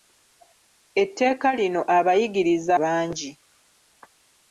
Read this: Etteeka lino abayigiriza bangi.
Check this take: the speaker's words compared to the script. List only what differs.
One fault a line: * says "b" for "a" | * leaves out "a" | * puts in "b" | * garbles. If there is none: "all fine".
all fine